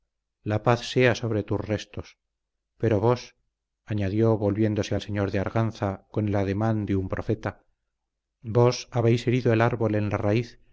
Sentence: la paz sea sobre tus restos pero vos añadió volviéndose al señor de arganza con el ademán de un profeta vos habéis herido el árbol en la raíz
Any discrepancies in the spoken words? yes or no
no